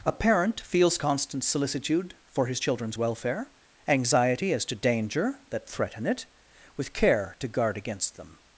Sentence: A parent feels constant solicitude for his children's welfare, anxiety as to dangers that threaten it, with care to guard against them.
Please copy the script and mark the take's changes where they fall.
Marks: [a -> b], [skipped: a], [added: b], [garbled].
A parent feels constant solicitude for his children's welfare, anxiety as to [dangers -> danger] that threaten it, with care to guard against them.